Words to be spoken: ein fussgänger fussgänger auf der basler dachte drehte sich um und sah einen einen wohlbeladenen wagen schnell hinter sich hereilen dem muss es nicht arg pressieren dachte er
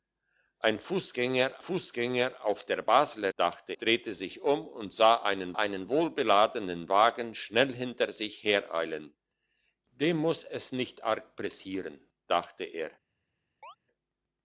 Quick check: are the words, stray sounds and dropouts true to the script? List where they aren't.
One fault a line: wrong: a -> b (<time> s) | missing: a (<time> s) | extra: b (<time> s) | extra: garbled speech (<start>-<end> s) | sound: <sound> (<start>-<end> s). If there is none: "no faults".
sound: chirp (13.6-13.8 s)